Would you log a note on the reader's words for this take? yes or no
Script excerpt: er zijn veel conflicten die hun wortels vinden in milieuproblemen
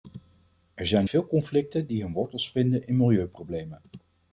no